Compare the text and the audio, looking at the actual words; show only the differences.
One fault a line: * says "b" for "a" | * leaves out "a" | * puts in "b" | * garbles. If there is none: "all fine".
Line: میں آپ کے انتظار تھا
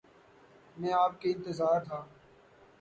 all fine